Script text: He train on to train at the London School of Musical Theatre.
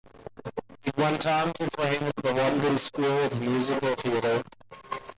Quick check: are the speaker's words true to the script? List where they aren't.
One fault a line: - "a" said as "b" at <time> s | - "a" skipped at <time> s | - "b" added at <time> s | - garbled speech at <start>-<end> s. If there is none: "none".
- "train" said as "went" at 1.0 s